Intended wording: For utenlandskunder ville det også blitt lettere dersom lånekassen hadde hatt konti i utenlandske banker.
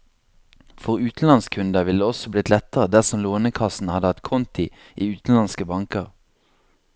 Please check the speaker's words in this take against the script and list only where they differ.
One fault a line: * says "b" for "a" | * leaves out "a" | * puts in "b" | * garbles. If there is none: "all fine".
all fine